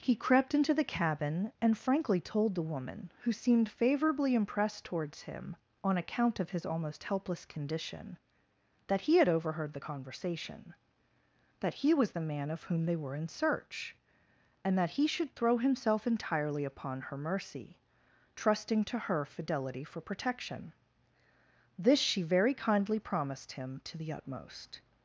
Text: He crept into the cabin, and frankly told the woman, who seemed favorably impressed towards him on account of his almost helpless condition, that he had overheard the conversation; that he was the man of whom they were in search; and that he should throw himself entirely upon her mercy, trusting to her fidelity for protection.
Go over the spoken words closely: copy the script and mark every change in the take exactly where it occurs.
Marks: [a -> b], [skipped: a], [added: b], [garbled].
He crept into the cabin, and frankly told the woman, who seemed favorably impressed towards him on account of his almost helpless condition, that he had overheard the conversation; that he was the man of whom they were in search; and that he should throw himself entirely upon her mercy, trusting to her fidelity for protection. [added: This she very kindly promised him to the utmost]